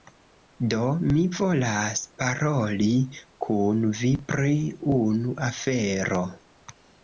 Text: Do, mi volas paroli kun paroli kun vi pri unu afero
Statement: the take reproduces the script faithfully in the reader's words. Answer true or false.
false